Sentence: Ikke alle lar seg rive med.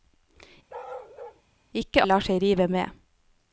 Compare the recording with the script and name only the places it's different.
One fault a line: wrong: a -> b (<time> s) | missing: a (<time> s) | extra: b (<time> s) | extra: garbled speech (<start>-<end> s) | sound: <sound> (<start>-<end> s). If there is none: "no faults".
sound: bark (0.7-1.4 s)
missing: alle (2.0 s)